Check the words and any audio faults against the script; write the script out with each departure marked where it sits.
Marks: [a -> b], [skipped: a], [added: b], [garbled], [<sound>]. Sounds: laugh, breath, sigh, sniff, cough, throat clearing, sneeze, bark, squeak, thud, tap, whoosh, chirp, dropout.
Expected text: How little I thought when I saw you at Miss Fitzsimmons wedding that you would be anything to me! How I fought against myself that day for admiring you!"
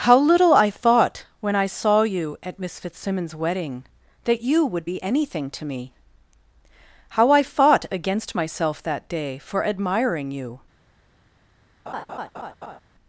How little I thought when I saw you at Miss Fitzsimmons wedding that you would be anything to me! How I fought against myself that day for admiring you!" [laugh]